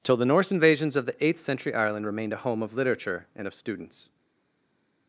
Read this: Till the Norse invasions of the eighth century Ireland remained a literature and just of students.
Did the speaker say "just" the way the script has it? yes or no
no